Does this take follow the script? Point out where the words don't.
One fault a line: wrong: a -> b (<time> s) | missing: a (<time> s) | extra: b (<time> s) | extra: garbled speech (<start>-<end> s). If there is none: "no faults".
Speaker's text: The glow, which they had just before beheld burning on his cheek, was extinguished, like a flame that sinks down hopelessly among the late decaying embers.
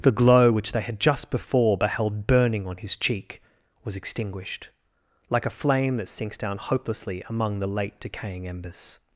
no faults